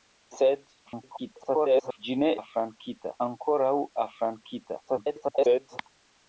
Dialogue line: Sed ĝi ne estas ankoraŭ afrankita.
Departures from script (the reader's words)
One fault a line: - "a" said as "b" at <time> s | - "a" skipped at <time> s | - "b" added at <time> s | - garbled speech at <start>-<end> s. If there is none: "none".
- garbled speech at 0.9-2.0 s
- "estas" said as "afrankita" at 2.4 s
- garbled speech at 4.9-5.8 s